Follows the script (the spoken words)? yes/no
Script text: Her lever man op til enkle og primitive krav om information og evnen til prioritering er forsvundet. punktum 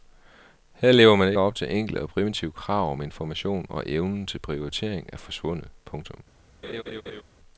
yes